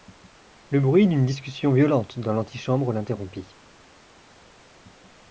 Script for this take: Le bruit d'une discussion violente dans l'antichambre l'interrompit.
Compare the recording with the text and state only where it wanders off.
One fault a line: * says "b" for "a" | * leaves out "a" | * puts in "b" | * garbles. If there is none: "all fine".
all fine